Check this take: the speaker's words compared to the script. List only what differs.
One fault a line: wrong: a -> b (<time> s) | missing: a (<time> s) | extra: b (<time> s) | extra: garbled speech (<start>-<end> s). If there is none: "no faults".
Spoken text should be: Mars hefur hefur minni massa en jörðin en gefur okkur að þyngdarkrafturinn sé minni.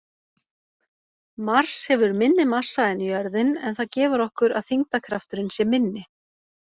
missing: hefur (2.1 s)
extra: það (3.8 s)